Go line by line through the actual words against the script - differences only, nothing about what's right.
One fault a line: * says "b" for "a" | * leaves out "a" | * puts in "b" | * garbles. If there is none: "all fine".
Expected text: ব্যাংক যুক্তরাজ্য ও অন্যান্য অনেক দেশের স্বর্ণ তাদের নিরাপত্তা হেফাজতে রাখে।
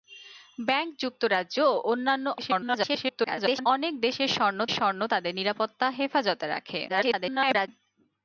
* garbles
* puts in "স্বর্ণ"
* garbles